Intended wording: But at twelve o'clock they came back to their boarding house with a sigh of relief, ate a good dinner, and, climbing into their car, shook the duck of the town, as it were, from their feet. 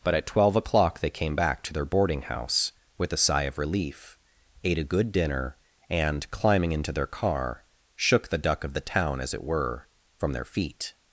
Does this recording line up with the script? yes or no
yes